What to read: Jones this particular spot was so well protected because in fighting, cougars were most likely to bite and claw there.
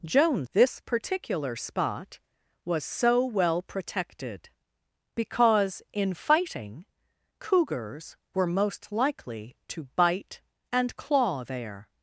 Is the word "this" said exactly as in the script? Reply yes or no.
yes